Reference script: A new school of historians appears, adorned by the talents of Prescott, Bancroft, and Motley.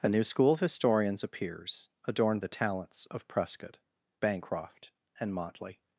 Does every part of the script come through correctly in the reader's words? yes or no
no